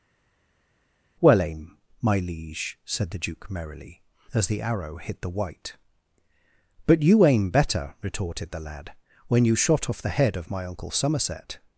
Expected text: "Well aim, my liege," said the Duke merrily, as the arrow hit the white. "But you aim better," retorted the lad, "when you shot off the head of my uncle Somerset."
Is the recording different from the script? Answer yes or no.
no